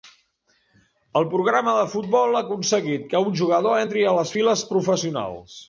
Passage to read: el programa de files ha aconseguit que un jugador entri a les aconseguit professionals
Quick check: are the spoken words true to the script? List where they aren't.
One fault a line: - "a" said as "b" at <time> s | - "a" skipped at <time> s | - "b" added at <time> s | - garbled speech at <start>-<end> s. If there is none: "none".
- "files" said as "futbol" at 1.9 s
- "aconseguit" said as "files" at 4.3 s